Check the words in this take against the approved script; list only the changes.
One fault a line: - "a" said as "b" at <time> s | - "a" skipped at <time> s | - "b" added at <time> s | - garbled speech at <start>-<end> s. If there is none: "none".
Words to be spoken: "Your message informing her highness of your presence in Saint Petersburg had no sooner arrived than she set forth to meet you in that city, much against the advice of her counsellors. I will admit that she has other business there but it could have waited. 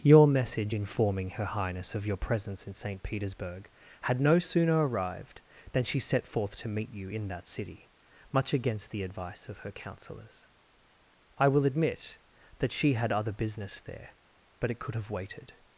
- "has" said as "had" at 12.9 s